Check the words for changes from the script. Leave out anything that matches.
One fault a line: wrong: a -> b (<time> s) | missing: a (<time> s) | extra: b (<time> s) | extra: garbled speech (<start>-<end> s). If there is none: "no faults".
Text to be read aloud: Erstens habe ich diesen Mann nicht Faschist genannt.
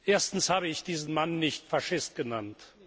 no faults